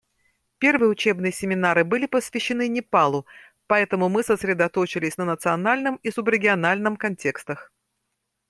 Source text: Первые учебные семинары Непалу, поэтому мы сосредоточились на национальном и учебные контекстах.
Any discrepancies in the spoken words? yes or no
yes